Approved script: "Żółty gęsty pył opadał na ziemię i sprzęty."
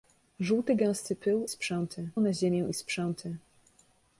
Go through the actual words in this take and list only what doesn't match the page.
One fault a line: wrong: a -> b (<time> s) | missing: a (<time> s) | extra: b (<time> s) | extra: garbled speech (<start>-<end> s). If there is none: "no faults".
wrong: opadał -> sprzęty (1.5 s)